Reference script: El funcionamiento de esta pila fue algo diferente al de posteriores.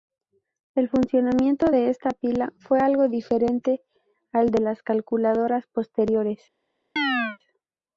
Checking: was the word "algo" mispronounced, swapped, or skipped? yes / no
no